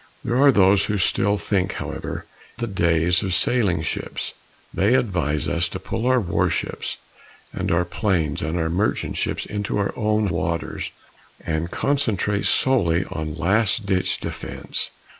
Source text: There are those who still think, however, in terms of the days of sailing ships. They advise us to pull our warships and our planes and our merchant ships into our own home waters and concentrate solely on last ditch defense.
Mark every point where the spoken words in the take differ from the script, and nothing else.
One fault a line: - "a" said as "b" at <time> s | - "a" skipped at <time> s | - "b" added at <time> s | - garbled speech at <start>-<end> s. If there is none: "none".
- "in terms of" skipped at 2.3 s
- "home" skipped at 10.3 s